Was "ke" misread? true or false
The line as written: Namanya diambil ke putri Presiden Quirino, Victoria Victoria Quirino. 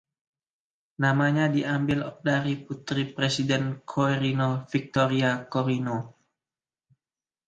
true